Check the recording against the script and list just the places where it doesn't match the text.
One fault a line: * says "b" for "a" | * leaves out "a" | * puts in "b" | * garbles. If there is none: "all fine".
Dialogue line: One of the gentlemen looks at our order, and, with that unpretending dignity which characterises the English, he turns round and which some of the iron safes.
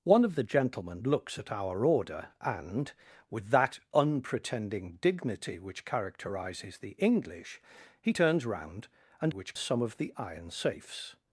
all fine